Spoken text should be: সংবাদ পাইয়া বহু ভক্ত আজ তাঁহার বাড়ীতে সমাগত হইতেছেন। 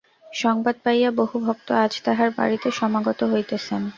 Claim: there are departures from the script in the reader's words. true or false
false